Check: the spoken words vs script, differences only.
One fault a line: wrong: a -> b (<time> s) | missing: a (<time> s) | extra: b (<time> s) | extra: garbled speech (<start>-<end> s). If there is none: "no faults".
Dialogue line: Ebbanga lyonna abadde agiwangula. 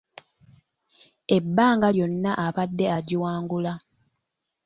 no faults